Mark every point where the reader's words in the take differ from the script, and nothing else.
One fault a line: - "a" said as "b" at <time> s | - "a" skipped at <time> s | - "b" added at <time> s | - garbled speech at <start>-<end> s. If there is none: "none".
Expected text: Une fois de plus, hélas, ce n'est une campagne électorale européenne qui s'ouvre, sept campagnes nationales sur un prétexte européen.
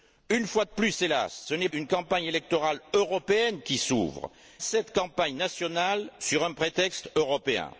none